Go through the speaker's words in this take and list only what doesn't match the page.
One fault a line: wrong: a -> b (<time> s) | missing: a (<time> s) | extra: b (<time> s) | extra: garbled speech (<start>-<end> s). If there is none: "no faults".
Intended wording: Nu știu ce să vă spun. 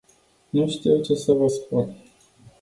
no faults